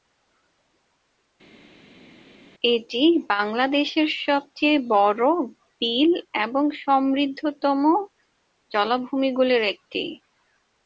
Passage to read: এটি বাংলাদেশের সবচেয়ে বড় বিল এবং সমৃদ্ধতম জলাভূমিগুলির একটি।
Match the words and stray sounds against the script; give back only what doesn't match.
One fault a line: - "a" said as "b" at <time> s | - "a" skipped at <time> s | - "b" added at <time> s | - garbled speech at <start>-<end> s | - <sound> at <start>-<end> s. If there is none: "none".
none